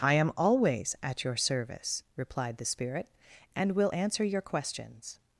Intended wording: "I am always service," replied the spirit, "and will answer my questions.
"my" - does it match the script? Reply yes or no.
no